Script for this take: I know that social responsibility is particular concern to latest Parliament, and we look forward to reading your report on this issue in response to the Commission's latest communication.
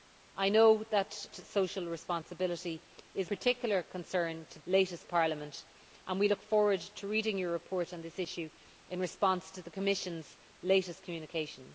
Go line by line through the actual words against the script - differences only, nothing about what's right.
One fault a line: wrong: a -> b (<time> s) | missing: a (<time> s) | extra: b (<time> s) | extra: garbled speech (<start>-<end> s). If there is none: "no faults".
no faults